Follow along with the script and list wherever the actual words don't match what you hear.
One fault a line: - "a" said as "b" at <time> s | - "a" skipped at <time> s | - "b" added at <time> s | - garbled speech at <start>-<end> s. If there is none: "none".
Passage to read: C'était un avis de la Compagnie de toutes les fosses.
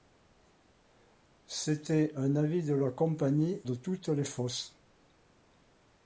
none